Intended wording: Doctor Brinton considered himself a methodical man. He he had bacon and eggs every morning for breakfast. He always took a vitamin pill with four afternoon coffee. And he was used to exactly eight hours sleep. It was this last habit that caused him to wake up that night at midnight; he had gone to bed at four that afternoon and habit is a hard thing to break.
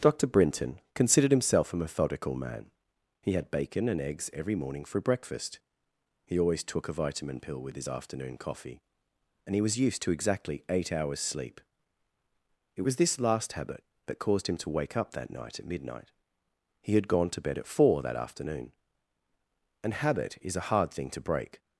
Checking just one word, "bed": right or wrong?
right